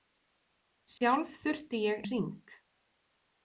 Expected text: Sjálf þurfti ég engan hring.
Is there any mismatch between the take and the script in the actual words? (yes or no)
yes